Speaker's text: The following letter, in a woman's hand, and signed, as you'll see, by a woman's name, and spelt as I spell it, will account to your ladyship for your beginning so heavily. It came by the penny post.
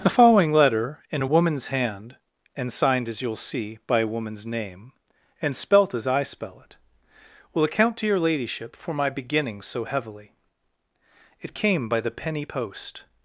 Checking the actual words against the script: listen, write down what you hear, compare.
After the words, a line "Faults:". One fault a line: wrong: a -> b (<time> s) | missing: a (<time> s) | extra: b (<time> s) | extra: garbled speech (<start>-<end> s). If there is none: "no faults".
The following letter, in a woman's hand, and signed, as you'll see, by a woman's name, and spelt as I spell it, will account to your ladyship for my beginning so heavily. It came by the penny post.
Faults:
wrong: your -> my (8.9 s)